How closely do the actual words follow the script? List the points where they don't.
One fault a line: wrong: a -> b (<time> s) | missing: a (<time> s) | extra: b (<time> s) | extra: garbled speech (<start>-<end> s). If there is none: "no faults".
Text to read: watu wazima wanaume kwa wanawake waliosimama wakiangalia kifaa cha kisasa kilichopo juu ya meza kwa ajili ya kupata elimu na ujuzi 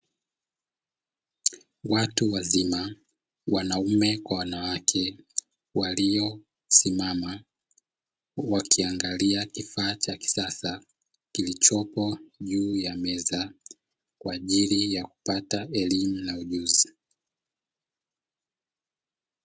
no faults